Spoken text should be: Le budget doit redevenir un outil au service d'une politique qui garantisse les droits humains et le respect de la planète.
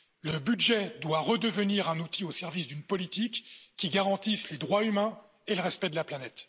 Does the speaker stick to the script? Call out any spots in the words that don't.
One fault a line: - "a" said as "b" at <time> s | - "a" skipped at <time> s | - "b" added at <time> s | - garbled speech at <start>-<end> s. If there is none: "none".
none